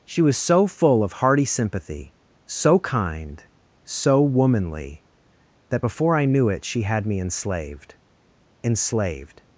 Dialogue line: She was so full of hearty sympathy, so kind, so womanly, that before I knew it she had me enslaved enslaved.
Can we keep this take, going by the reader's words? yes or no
yes